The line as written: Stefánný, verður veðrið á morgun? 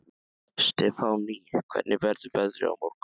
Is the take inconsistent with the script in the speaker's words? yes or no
yes